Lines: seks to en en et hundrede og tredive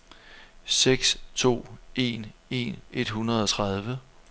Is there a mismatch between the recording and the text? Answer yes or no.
no